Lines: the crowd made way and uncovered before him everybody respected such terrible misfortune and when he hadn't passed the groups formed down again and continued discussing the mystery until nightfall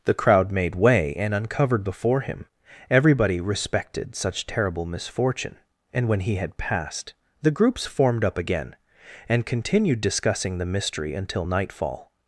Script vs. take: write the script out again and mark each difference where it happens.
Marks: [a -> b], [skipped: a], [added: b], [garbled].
the crowd made way and uncovered before him everybody respected such terrible misfortune and when he [hadn't -> had] passed the groups formed [down -> up] again and continued discussing the mystery until nightfall